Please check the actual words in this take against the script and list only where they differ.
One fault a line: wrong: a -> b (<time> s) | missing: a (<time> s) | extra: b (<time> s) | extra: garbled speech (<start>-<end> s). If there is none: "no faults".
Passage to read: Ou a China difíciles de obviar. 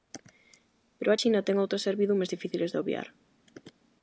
wrong: Ou -> Pero (1.0 s)
extra: ten outras servidumes (1.5 s)